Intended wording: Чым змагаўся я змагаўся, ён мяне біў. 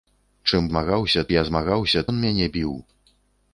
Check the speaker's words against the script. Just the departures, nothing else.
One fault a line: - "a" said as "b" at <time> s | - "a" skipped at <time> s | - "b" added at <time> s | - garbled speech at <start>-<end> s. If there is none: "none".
none